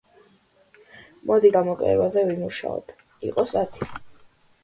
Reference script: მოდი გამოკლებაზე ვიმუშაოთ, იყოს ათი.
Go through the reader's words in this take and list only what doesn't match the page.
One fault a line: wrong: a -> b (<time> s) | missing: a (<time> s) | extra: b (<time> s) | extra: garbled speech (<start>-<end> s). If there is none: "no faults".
no faults